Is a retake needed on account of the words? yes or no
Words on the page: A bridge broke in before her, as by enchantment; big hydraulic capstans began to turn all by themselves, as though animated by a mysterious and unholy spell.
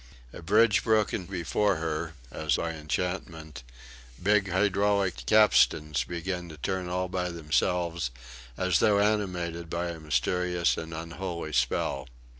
no